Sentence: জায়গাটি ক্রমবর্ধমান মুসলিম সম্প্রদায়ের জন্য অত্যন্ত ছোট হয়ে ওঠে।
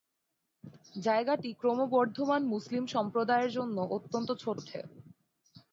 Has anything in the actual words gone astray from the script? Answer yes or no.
yes